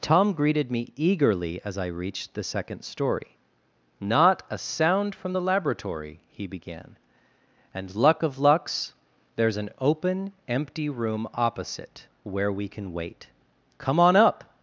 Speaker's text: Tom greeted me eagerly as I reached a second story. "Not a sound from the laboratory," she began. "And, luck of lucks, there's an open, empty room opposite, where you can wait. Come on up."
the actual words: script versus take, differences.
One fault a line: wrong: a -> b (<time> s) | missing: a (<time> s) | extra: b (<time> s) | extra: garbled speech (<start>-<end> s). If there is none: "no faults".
wrong: a -> the (2.3 s)
wrong: she -> he (6.3 s)
wrong: you -> we (12.5 s)